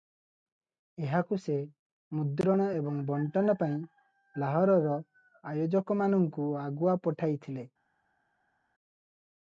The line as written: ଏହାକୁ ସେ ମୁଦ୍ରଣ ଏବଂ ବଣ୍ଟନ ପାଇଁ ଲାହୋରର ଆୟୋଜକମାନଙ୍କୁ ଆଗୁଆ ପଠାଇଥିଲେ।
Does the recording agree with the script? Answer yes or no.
yes